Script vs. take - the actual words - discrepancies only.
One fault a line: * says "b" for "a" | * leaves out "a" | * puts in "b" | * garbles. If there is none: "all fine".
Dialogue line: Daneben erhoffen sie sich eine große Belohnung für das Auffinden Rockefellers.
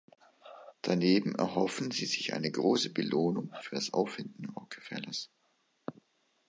all fine